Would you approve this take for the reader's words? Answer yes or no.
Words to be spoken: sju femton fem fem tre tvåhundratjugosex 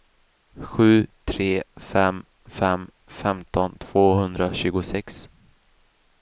no